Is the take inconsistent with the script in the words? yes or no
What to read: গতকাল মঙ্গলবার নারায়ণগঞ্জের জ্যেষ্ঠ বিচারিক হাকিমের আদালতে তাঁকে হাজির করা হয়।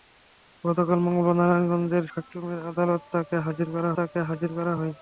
yes